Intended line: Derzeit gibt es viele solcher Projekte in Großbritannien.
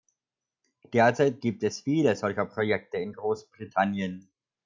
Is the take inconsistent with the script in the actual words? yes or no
no